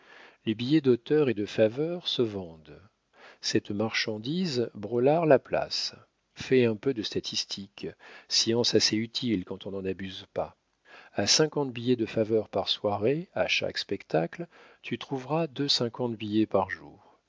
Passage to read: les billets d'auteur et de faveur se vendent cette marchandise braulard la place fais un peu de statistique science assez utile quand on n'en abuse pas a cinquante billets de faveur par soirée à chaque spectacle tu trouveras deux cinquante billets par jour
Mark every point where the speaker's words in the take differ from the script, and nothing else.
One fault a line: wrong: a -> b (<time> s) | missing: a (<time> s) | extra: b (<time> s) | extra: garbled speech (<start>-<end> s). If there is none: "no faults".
no faults